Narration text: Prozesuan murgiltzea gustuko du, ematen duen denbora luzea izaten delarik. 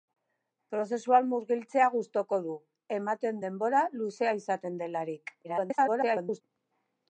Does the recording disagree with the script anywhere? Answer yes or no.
yes